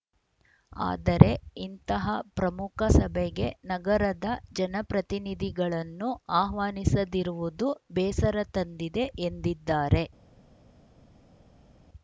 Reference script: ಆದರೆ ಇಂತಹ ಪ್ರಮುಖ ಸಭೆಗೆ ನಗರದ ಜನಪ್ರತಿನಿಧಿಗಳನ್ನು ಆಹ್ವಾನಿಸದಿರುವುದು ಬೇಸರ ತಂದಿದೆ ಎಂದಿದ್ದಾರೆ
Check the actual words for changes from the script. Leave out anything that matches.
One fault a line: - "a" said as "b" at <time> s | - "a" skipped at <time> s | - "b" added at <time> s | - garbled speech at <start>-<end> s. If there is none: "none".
none